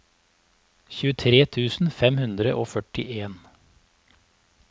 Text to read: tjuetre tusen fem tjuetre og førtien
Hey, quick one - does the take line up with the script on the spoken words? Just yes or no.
no